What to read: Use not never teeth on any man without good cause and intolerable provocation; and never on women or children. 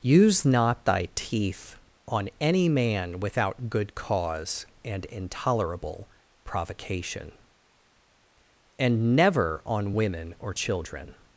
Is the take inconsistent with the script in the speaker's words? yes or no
yes